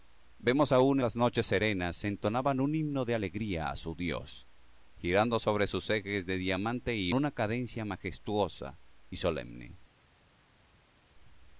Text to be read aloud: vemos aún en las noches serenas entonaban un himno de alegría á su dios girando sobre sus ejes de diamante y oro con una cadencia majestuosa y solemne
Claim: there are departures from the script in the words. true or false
true